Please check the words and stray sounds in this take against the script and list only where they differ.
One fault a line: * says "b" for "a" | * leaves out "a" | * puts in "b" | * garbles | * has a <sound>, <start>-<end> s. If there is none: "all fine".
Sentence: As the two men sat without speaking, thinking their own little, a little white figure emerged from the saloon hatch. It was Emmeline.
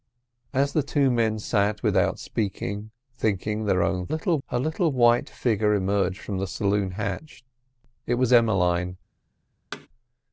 * has a thud, 9.7-9.9 s